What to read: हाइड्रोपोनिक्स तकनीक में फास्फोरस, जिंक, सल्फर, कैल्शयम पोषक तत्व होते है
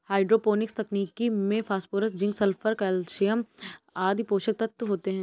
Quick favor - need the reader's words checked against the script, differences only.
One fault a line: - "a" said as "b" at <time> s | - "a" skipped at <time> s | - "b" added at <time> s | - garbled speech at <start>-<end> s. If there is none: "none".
- "आदि" added at 4.0 s